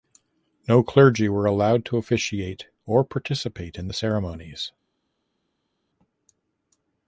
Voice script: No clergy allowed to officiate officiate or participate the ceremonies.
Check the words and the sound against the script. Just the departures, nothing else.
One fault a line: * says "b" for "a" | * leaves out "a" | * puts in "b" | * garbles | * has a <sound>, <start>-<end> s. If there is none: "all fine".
* puts in "were"
* leaves out "officiate"
* puts in "in"